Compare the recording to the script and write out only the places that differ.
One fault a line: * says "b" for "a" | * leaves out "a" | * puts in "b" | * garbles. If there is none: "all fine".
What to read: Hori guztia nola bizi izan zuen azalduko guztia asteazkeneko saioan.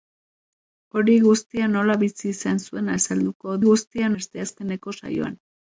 all fine